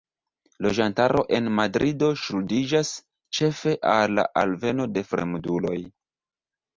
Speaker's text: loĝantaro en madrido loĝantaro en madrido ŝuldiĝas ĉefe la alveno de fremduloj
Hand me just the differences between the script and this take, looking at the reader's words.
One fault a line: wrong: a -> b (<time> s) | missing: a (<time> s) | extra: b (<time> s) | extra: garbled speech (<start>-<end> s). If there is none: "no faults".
missing: loĝantaro en madrido (2.1 s)
extra: al (3.9 s)